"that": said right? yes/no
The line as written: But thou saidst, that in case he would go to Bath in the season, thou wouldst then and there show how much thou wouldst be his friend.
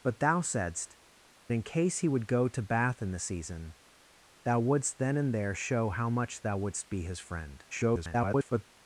no